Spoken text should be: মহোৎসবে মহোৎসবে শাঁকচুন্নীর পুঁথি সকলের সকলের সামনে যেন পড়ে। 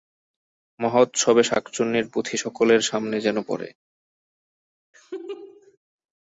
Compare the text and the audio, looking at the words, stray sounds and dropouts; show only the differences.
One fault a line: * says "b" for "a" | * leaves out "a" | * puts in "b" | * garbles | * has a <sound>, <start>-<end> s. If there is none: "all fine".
* leaves out "মহোৎসবে"
* leaves out "সকলের"
* has a laugh, 4.9-5.8 s